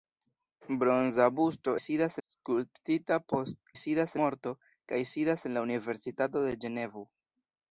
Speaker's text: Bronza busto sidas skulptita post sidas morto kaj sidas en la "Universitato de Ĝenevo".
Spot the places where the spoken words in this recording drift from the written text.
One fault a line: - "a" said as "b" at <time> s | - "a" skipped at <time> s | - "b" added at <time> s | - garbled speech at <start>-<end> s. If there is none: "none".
none